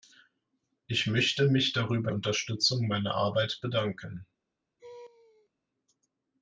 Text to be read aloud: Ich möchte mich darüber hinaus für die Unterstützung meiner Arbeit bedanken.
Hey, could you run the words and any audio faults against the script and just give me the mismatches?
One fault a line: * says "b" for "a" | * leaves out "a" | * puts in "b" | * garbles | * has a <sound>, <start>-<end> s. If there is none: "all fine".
* leaves out "hinaus für die"
* has a laugh, 4.8-5.5 s